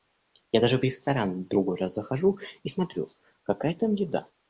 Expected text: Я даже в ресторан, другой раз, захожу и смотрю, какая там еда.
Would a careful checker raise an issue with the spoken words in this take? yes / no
no